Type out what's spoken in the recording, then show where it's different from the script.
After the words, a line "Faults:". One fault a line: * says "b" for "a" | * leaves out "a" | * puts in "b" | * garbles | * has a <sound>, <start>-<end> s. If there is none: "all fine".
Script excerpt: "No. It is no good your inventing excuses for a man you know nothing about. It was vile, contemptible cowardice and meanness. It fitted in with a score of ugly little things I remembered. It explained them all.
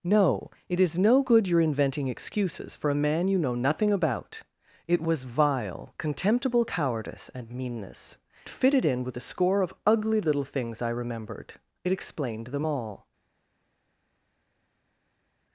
"No. It is no good your inventing excuses for a man you know nothing about. It was vile, contemptible cowardice and meanness. Fitted in with a score of ugly little things I remembered. It explained them all.
Faults:
* leaves out "It"